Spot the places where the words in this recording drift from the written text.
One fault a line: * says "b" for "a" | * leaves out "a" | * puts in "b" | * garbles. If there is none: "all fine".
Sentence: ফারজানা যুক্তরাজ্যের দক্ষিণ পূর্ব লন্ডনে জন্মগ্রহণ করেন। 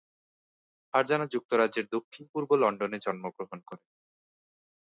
all fine